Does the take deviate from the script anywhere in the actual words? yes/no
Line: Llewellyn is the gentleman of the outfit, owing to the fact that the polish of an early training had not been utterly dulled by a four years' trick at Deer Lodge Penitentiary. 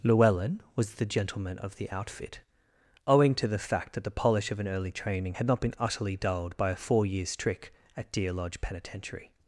yes